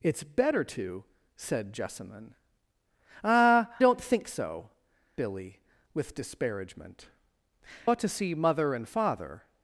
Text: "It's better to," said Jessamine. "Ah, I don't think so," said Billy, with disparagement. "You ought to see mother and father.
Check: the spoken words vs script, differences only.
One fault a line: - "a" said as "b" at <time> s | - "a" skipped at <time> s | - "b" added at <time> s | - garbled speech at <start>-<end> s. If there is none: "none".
- "I" skipped at 3.7 s
- "said" skipped at 4.7 s
- "You" skipped at 7.1 s